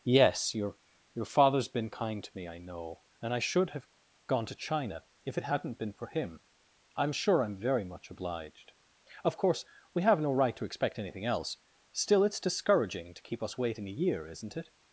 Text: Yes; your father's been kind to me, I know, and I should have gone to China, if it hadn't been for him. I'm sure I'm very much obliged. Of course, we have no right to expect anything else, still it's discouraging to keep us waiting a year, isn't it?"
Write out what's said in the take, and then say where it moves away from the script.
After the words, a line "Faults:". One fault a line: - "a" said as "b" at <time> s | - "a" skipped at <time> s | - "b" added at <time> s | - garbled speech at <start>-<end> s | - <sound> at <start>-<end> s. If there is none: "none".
Yes; your your father's been kind to me, I know, and I should have gone to China, if it hadn't been for him. I'm sure I'm very much obliged. Of course, we have no right to expect anything else, still it's discouraging to keep us waiting a year, isn't it?"
Faults:
- "your" added at 1.1 s